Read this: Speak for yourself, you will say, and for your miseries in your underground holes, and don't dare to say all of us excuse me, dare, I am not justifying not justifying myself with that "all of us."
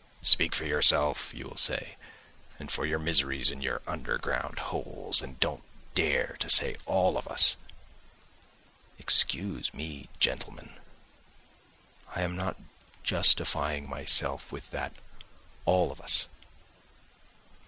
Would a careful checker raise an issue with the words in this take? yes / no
yes